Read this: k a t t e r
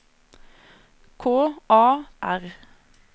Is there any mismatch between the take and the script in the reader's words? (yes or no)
yes